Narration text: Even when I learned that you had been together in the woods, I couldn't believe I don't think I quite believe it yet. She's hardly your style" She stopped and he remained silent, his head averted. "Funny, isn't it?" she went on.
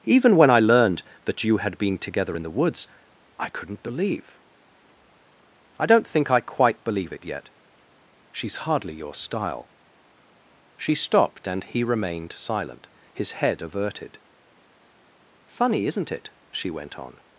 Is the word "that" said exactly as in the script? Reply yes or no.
yes